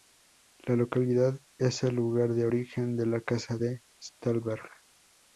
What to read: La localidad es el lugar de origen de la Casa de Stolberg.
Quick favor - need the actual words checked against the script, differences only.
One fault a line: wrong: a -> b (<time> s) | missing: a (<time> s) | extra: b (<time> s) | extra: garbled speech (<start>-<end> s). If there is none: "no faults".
no faults